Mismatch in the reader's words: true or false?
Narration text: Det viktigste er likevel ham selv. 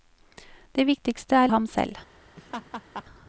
true